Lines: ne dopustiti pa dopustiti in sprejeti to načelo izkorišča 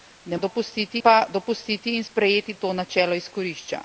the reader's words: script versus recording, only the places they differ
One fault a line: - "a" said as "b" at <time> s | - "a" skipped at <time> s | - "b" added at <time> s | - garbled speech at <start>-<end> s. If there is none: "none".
none